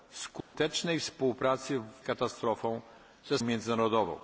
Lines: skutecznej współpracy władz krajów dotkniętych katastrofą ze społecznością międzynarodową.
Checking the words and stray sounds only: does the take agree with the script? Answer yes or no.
no